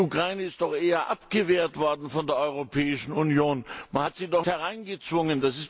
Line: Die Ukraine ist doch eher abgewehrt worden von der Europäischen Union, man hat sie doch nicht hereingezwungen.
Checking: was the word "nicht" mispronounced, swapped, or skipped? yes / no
yes